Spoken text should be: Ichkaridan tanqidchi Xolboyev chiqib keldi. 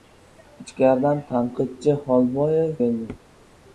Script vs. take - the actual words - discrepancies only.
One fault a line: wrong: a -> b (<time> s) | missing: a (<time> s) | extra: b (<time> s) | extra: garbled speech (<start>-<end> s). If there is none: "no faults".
missing: chiqib (2.7 s)